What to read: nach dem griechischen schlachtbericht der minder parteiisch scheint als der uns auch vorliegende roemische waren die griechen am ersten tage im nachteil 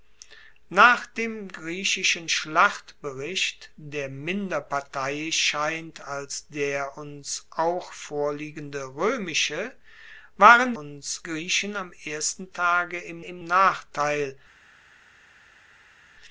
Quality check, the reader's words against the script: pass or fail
fail